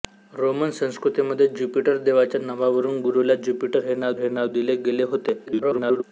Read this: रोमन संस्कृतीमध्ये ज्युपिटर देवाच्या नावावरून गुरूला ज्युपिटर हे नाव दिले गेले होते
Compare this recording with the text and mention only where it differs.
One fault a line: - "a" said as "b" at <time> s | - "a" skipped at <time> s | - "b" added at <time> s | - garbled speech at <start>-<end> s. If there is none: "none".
- "हे नाव" added at 4.2 s
- garbled speech at 5.5-6.0 s